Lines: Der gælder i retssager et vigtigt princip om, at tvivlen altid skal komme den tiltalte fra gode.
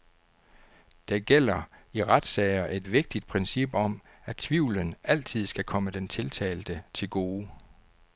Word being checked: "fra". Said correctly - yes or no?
no